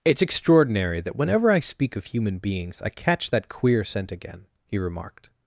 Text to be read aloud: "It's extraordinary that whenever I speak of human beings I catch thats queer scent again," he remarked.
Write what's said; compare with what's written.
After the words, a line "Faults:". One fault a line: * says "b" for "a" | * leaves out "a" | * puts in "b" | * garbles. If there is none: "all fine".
"It's extraordinary that whenever I speak of human beings I catch that queer scent again," he remarked.
Faults:
* says "that" for "thats"